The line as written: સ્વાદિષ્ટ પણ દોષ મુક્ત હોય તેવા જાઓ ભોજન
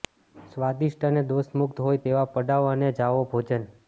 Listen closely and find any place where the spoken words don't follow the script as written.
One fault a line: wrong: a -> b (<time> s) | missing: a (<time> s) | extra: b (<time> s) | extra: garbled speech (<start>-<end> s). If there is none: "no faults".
wrong: પણ -> અને (1.1 s)
extra: પડાવ અને (2.3 s)